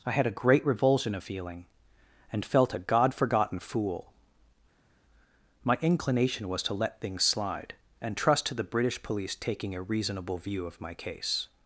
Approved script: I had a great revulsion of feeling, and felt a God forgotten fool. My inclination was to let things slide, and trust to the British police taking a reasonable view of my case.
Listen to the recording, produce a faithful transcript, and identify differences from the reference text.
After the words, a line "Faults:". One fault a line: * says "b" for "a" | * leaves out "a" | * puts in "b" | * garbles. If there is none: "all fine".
I had a great revulsion of feeling, and felt a God forgotten fool. My inclination was to let things slide, and trust to the British police taking a reasonable view of my case.
Faults:
all fine